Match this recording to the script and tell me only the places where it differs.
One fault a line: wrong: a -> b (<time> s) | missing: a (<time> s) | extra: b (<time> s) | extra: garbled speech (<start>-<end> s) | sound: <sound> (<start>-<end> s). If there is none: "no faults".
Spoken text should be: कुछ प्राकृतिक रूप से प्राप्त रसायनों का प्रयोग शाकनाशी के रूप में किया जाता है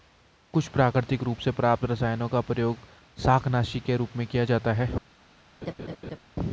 sound: laugh (5.6-6.2 s)